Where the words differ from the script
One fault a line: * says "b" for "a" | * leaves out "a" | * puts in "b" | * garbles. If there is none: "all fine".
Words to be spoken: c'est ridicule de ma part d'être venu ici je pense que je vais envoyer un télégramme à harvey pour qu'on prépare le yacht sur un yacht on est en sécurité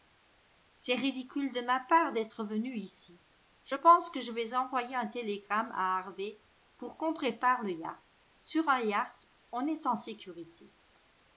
all fine